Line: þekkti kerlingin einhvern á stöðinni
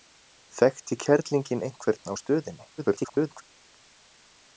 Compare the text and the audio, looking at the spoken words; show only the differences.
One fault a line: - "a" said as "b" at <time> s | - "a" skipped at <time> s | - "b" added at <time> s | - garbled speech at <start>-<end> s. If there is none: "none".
- garbled speech at 2.8-3.4 s